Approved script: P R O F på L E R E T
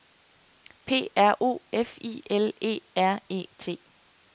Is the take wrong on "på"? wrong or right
wrong